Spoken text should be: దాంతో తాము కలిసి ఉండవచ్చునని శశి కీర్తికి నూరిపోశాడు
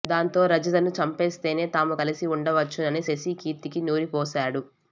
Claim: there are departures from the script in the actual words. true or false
true